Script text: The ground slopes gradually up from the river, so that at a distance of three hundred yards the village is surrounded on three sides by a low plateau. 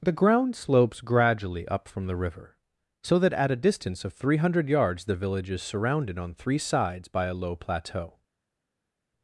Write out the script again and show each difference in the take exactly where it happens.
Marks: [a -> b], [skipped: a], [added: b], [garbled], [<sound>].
The ground slopes gradually up from the river, so that at a distance of three hundred yards the village is surrounded on three sides by a low plateau.